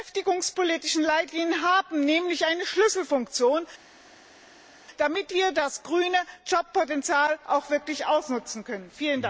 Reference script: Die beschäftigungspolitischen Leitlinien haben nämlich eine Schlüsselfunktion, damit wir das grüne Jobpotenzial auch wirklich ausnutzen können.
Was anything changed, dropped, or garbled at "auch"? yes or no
no